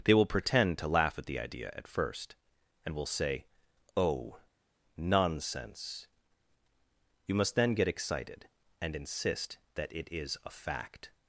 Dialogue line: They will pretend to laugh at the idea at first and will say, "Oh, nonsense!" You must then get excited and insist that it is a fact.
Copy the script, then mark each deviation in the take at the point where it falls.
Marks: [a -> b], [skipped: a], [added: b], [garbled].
They will pretend to laugh at the idea at first and will say, "Oh, nonsense!" You must then get excited and insist that it is a fact.